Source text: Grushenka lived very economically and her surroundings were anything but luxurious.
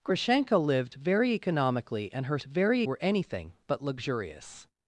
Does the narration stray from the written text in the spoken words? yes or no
yes